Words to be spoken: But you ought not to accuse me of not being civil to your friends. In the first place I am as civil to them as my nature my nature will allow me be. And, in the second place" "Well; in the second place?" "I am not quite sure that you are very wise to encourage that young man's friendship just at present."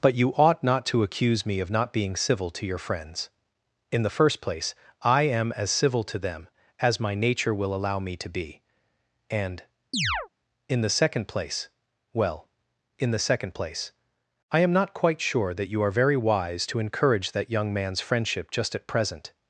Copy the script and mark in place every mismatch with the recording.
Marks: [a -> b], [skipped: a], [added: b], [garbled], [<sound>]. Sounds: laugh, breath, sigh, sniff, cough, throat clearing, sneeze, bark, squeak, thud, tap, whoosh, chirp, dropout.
But you ought not to accuse me of not being civil to your friends. In the first place I am as civil to them as my nature [skipped: my nature] will allow me [added: to] be. And, [chirp] in the second place" "Well; in the second place?" "I am not quite sure that you are very wise to encourage that young man's friendship just at present."